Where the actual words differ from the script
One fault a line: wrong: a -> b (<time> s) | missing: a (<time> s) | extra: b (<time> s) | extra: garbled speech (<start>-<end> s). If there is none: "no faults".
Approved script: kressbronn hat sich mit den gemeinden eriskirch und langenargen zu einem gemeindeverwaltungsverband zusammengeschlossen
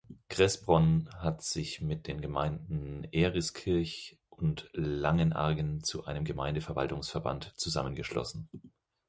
no faults